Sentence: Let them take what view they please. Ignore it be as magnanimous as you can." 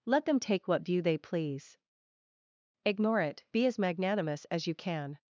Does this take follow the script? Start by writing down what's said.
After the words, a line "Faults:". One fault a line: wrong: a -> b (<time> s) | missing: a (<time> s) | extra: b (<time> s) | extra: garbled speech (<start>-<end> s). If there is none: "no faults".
Let them take what view they please. Ignore it be as magnanimous as you can."
Faults:
no faults